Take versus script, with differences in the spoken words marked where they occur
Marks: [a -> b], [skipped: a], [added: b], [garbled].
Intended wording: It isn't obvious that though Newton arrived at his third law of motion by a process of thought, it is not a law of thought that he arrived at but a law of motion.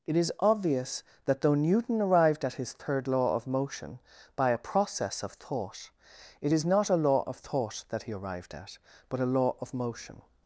It [isn't -> is] obvious that though Newton arrived at his third law of motion by a process of thought, it is not a law of thought that he arrived at but a law of motion.